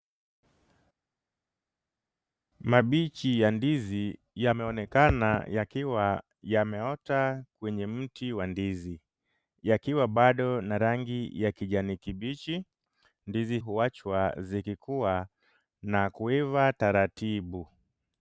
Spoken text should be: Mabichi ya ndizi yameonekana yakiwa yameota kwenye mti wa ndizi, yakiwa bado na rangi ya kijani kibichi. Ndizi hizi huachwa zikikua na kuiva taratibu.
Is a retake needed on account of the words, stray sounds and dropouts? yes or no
yes